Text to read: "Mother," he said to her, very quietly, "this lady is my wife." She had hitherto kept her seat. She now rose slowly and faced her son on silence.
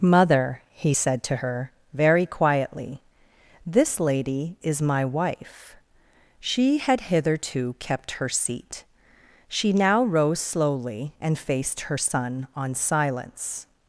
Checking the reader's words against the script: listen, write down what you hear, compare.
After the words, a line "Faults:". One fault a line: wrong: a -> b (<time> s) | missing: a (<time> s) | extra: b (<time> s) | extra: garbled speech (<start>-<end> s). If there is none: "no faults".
"Mother," he said to her, very quietly, "this lady is my wife." She had hitherto kept her seat. She now rose slowly and faced her son on silence.
Faults:
no faults